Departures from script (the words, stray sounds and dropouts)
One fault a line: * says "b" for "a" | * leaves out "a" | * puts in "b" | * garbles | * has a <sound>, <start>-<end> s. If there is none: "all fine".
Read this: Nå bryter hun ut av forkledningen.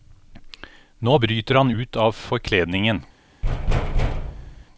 * says "han" for "hun"
* has a thud, 3.4-4.7 s